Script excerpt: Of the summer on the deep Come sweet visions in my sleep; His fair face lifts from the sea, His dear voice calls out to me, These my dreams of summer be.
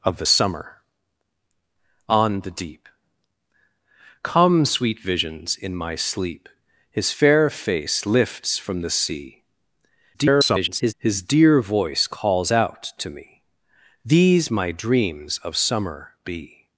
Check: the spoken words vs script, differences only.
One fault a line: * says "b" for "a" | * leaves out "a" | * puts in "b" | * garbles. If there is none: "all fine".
* garbles